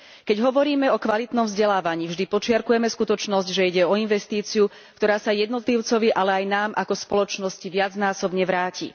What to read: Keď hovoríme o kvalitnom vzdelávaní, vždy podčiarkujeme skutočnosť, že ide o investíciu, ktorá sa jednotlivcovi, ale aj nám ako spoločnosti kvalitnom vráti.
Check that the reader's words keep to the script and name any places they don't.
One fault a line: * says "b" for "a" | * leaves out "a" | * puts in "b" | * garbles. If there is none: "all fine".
* says "viacnásobne" for "kvalitnom"